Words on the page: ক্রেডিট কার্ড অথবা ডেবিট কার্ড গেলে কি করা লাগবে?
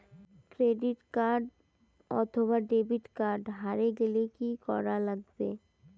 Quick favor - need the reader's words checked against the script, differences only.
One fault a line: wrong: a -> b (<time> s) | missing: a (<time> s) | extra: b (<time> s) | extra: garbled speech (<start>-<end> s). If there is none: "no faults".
extra: হারে (3.6 s)